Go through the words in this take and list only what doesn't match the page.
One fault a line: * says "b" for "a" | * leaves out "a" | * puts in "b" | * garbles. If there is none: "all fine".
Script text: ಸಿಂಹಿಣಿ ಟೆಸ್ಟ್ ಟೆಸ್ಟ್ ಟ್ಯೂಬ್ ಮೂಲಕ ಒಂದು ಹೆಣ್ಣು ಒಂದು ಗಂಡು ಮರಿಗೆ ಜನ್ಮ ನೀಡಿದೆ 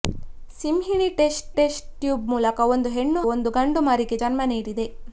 all fine